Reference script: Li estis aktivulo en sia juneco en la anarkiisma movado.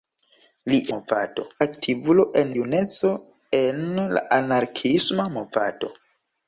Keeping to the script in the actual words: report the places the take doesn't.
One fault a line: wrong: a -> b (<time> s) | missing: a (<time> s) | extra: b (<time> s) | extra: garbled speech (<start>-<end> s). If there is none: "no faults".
wrong: estis -> movado (0.9 s)
missing: sia (2.5 s)